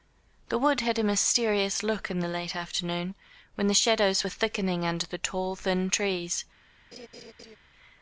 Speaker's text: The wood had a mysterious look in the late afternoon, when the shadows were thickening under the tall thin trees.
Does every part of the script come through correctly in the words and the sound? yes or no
no